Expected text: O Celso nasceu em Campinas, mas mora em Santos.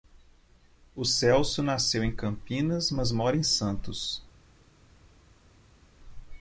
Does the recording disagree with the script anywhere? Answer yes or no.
no